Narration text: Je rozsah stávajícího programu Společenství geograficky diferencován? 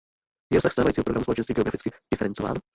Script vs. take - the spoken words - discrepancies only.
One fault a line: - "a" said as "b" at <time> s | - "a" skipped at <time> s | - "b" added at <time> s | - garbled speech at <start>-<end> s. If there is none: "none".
none